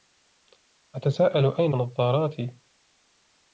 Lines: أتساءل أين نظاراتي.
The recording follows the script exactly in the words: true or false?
true